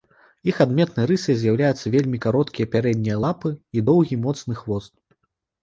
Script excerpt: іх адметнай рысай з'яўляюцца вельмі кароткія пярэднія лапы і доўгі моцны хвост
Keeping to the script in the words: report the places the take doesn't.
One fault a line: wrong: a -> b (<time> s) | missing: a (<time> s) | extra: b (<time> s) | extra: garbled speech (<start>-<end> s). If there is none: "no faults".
no faults